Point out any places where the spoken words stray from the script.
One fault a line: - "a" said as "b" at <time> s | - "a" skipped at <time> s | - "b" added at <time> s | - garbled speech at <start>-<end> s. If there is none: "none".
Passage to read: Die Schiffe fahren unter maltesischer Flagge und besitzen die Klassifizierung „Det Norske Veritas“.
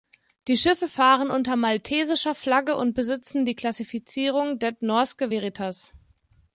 none